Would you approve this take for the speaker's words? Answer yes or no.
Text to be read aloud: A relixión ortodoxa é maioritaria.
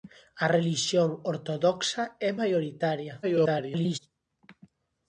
no